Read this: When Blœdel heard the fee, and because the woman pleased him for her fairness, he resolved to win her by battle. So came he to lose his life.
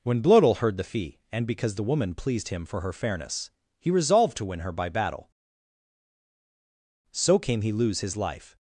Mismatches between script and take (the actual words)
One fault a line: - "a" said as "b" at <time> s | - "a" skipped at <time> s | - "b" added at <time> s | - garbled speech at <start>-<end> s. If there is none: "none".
- "to" skipped at 7.7 s